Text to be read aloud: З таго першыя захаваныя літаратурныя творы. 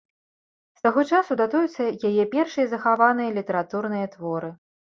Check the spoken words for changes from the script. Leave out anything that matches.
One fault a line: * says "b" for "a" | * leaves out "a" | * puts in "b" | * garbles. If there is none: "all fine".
* puts in "часу датуюцца яе"